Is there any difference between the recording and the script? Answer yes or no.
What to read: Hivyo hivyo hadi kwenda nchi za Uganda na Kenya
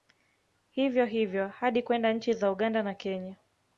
no